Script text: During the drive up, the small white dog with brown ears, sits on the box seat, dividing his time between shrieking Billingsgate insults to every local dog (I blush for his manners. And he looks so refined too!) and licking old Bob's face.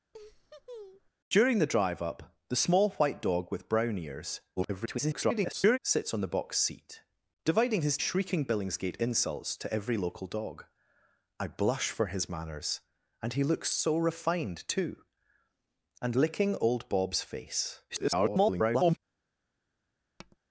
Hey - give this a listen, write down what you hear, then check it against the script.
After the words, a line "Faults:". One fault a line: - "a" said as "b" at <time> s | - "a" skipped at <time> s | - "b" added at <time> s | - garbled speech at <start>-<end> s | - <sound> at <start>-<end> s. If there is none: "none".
During the drive up, the small white dog with brown ears, [garbled] sits on the box seat, dividing his shrieking Billingsgate insults to every local dog (I blush for his manners. And he looks so refined too!) and licking old Bob's face. [garbled]
Faults:
- laugh at 0.1-1.1 s
- garbled speech at 4.6-5.8 s
- "time between" skipped at 8.0 s
- garbled speech at 17.9-19.0 s
- tap at 20.2-20.4 s